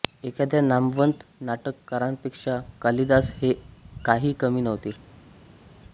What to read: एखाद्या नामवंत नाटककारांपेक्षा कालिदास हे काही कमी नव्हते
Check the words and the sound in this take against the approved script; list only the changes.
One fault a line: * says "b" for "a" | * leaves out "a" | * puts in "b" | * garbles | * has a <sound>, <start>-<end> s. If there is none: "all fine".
all fine